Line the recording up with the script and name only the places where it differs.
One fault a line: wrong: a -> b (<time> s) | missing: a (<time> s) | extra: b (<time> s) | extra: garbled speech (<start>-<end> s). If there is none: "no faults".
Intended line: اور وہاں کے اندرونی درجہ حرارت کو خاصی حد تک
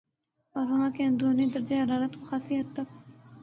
no faults